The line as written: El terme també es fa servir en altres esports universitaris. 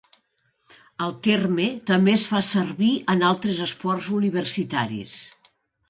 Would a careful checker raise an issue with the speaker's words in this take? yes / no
no